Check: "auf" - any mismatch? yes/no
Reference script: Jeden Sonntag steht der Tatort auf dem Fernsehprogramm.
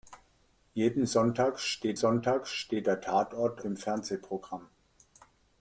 yes